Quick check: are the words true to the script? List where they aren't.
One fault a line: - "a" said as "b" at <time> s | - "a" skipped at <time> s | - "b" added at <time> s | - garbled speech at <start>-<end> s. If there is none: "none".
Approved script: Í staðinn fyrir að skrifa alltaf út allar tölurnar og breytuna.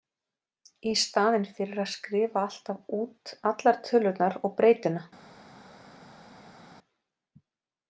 none